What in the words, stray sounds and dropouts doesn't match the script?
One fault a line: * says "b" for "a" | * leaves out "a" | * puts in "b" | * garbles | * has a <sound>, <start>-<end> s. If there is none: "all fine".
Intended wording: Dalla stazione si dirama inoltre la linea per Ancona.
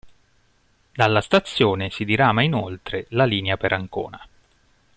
all fine